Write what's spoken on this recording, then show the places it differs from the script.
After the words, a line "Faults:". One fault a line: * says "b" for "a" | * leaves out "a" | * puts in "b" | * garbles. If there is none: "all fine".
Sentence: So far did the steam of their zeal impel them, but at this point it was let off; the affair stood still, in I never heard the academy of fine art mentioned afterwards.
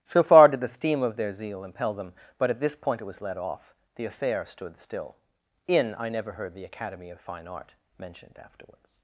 So far did the steam of their zeal impel them, but at this point it was let off; the affair stood still, in I never heard the academy of fine art mentioned afterwards.
Faults:
all fine